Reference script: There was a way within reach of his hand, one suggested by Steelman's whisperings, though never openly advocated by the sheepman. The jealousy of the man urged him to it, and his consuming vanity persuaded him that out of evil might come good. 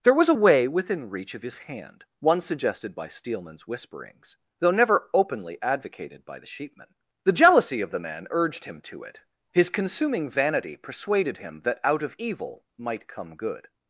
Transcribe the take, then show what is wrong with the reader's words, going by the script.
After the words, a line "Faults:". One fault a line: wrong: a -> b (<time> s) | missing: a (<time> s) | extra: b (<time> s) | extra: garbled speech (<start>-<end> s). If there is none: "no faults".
There was a way within reach of his hand, one suggested by Steelman's whisperings, though never openly advocated by the sheepman. The jealousy of the man urged him to it, his consuming vanity persuaded him that out of evil might come good.
Faults:
missing: and (9.2 s)